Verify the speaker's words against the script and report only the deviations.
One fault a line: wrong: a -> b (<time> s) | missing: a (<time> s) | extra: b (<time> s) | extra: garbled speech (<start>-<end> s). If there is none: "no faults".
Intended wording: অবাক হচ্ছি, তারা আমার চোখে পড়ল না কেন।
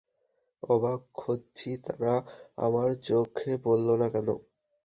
no faults